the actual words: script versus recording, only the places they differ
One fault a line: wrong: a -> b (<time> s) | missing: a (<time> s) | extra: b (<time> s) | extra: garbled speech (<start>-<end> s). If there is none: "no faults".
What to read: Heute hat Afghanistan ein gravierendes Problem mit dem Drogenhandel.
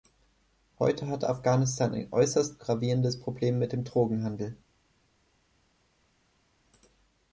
extra: äußerst (2.1 s)